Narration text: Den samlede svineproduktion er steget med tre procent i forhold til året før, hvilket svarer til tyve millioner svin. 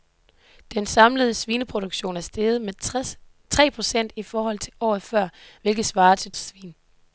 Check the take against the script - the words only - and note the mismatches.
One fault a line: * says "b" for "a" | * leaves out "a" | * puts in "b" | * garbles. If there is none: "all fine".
* leaves out "tyve millioner"